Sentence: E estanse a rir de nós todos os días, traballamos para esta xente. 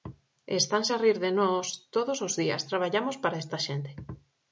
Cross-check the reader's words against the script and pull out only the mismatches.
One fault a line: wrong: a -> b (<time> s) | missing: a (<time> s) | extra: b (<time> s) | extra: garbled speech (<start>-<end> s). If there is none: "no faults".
no faults